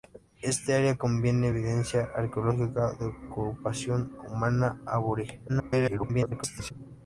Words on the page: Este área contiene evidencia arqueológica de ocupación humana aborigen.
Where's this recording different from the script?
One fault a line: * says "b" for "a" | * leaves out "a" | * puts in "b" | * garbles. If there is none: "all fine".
* garbles